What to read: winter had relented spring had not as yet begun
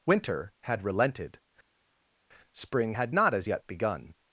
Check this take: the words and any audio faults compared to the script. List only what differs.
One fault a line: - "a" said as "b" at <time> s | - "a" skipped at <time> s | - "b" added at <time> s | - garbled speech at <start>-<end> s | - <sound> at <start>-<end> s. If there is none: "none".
none